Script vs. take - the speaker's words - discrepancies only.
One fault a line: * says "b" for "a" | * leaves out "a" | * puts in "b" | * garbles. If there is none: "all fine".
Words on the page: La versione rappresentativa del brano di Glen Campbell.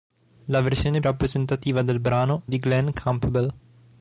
all fine